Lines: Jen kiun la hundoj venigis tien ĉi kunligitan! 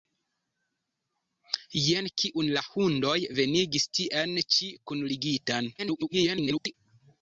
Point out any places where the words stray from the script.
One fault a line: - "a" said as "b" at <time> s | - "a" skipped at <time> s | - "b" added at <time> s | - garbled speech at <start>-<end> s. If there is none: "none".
- garbled speech at 5.8-6.7 s